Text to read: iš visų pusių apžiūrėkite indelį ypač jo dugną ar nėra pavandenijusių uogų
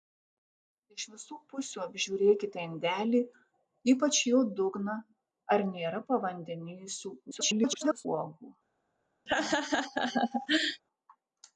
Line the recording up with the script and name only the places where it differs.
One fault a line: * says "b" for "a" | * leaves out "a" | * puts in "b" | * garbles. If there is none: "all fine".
* garbles